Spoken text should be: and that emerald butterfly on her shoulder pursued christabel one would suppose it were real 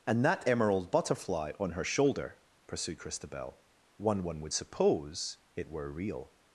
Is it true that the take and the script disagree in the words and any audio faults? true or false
true